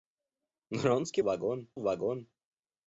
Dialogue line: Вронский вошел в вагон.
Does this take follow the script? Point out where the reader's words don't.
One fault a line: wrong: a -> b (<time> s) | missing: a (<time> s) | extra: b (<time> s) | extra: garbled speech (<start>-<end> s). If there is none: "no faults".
wrong: вошел -> вагон (1.2 s)